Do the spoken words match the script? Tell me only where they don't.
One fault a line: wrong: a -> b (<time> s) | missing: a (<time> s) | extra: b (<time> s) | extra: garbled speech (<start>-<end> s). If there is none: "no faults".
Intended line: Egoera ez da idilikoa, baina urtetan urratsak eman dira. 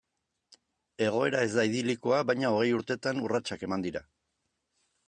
extra: hogei (2.5 s)